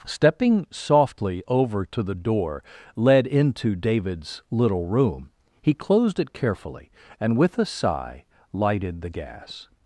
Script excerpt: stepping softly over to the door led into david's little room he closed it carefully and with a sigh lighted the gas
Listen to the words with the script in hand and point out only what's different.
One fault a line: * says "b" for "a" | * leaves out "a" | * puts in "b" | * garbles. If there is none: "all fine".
all fine